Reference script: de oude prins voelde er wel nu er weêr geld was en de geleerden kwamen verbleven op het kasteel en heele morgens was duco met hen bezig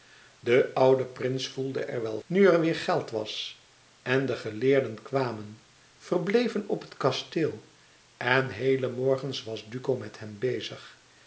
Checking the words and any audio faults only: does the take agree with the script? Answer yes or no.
yes